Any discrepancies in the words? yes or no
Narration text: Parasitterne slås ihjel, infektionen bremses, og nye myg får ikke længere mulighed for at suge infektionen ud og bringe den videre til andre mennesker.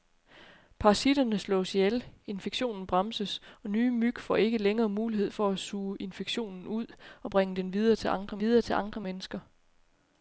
yes